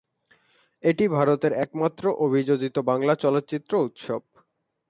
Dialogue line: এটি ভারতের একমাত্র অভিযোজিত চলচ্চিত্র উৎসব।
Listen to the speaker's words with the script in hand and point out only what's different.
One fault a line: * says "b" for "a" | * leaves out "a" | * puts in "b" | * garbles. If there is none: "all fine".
* puts in "বাংলা"